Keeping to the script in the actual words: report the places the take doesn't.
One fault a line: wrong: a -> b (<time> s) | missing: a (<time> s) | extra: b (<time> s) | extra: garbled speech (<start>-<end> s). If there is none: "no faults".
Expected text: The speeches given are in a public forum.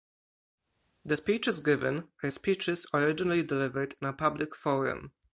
extra: speeches originally delivered (2.3 s)